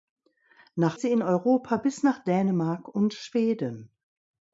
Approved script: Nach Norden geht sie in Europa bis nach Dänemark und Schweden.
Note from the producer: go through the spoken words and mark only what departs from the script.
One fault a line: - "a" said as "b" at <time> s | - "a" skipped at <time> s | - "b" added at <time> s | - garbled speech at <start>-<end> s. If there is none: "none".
- "Norden geht" skipped at 1.0 s